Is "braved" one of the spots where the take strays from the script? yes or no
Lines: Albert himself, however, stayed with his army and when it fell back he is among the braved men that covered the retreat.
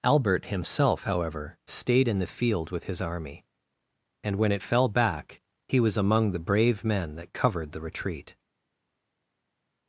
yes